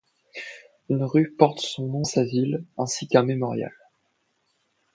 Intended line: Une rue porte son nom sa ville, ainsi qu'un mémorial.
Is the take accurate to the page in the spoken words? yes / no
yes